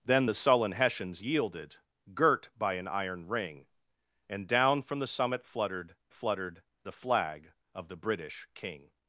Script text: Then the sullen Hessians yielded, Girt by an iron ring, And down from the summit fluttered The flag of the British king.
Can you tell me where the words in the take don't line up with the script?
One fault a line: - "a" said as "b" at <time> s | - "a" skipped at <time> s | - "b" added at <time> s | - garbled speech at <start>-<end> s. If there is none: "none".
- "fluttered" added at 6.1 s